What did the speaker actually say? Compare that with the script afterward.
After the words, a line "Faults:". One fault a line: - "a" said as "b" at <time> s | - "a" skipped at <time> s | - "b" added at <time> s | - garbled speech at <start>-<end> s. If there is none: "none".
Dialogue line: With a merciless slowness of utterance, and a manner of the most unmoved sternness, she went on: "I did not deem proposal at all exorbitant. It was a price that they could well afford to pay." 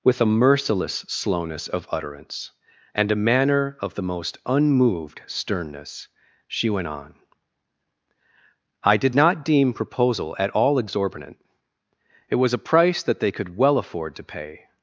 With a merciless slowness of utterance, and a manner of the most unmoved sternness, she went on: "I did not deem proposal at all exorbitant. It was a price that they could well afford to pay."
Faults:
none